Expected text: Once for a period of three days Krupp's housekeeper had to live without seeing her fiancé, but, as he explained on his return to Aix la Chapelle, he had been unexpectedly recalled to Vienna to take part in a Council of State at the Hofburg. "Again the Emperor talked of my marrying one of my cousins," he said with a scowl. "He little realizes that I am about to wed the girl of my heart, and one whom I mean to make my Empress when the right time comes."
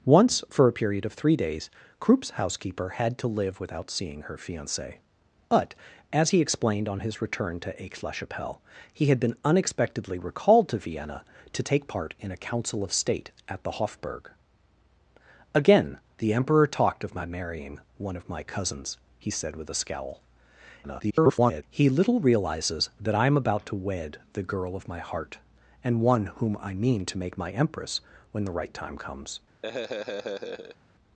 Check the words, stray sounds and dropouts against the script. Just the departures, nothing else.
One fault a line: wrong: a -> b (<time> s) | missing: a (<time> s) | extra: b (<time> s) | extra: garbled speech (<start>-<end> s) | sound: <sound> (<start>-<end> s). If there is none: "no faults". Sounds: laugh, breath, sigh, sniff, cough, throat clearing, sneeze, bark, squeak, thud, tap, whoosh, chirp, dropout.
extra: garbled speech (20.8-21.6 s)
sound: laugh (29.6-30.8 s)